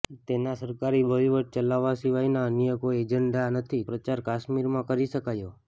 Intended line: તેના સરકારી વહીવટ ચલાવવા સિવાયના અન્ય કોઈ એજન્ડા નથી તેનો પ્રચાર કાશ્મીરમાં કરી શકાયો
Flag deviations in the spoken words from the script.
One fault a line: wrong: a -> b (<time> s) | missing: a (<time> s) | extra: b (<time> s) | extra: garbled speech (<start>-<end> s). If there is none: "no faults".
missing: તેનો (3.8 s)